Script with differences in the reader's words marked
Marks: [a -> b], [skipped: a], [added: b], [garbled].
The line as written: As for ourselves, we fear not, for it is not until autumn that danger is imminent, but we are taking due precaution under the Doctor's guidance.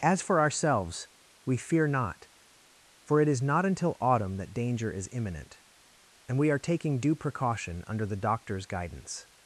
As for ourselves, we fear not, for it is not until autumn that danger is imminent, [but -> and] we are taking due precaution under the Doctor's guidance.